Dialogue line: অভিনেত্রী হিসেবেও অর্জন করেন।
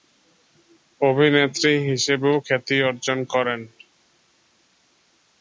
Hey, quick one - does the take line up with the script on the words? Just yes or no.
no